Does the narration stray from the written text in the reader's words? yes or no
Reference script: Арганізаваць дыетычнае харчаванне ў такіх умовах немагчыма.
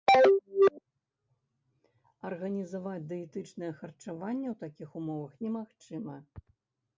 no